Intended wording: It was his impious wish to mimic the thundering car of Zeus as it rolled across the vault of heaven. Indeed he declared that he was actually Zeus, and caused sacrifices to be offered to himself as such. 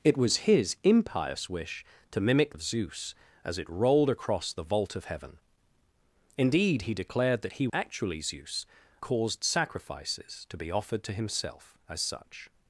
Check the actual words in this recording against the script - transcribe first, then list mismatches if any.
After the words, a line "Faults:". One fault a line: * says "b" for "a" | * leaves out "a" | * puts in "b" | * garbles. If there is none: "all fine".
It was his impious wish to mimic of Zeus as it rolled across the vault of heaven. Indeed he declared that he actually Zeus, caused sacrifices to be offered to himself as such.
Faults:
* leaves out "the thundering car"
* leaves out "was"
* leaves out "and"